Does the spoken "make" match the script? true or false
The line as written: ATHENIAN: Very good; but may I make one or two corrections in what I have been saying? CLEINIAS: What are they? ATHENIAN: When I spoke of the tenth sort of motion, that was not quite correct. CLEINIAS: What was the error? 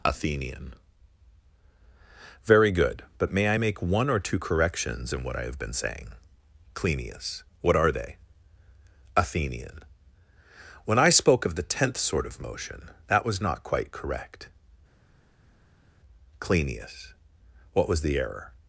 true